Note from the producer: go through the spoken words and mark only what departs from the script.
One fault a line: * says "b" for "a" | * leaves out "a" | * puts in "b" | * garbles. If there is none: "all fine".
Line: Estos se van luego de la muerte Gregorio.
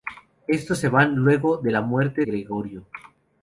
all fine